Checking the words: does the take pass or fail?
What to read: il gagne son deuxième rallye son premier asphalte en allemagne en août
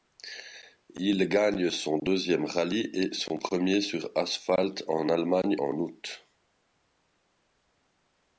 fail